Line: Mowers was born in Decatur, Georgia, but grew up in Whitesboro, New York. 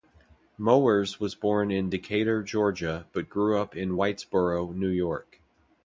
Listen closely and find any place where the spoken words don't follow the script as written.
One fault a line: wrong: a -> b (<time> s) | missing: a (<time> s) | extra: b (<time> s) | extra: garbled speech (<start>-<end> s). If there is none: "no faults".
no faults